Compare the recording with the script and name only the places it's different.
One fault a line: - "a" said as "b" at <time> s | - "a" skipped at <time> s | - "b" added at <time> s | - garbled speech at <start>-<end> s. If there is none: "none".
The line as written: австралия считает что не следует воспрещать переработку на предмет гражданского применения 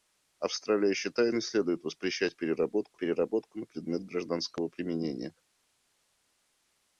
- "что" skipped at 1.4 s
- "переработку" added at 3.0 s